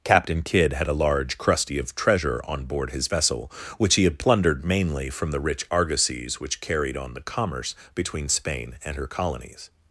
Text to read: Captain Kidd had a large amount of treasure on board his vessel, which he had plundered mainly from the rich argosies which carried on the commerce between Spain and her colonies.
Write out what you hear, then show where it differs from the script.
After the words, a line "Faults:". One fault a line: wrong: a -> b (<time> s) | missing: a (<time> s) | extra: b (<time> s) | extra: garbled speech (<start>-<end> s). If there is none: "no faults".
Captain Kidd had a large crusty of treasure on board his vessel, which he had plundered mainly from the rich argosies which carried on the commerce between Spain and her colonies.
Faults:
wrong: amount -> crusty (1.4 s)